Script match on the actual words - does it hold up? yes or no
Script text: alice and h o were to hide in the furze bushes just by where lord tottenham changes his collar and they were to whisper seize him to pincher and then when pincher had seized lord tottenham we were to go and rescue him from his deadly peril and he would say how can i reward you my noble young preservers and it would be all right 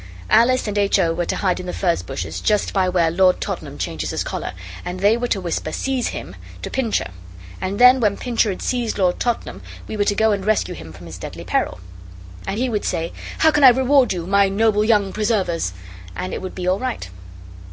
yes